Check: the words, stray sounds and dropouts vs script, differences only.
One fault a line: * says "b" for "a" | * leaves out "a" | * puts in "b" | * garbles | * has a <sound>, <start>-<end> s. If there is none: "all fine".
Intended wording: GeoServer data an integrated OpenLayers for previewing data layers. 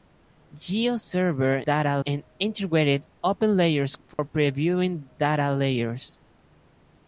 * has a dropout, 4.1-4.2 s